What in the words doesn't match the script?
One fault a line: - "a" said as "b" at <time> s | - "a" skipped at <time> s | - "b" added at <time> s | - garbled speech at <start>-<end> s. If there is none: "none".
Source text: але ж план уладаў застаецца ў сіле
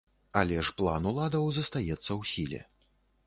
none